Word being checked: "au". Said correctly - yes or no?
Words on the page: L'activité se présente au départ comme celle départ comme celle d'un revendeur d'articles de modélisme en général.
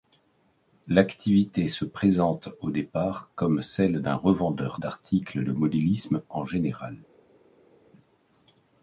yes